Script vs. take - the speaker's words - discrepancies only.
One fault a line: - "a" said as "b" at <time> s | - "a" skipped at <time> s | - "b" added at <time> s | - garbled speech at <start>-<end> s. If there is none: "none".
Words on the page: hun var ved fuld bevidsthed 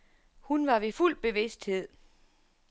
none